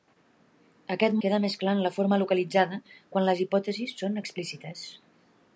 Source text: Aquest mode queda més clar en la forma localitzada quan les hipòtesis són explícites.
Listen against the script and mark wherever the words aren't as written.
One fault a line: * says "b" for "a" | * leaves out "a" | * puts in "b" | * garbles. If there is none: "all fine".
* leaves out "mode"